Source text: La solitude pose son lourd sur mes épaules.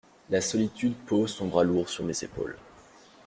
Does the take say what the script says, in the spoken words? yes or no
no